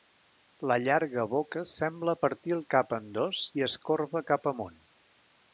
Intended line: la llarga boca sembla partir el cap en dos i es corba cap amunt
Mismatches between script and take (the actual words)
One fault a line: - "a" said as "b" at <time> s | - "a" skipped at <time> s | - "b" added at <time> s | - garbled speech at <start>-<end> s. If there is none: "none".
none